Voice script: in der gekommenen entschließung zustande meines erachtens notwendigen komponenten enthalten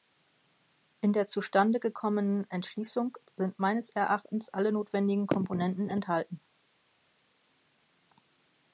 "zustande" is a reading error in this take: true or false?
true